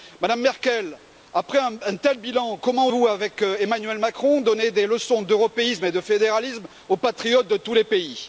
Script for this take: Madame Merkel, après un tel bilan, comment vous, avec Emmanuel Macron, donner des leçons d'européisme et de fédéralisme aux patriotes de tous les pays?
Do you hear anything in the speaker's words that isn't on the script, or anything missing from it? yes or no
no